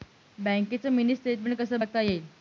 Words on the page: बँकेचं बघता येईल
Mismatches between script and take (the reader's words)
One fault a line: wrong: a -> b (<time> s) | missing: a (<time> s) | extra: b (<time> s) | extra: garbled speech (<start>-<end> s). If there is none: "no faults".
extra: मिनी स्टेटमेन्ट कसं (0.9 s)